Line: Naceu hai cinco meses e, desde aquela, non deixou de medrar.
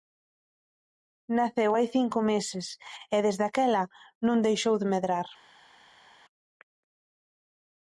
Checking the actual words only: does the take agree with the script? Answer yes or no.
yes